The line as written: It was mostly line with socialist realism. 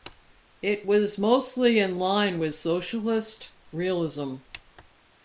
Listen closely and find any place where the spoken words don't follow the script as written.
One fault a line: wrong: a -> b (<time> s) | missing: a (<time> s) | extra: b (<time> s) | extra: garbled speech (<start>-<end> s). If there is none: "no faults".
extra: in (1.8 s)